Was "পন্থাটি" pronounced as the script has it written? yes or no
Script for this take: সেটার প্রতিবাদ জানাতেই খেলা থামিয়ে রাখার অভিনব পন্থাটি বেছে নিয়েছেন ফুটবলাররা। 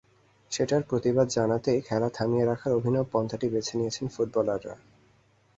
yes